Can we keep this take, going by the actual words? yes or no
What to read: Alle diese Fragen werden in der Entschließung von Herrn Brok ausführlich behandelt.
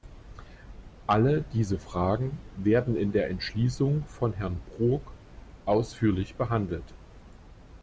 yes